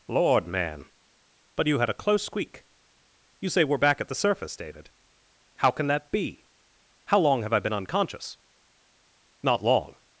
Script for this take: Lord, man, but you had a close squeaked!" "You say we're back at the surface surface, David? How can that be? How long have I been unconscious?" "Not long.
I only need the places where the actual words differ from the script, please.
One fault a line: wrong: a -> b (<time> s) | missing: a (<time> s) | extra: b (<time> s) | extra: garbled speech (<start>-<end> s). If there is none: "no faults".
wrong: squeaked -> squeak (2.2 s)
missing: surface (4.5 s)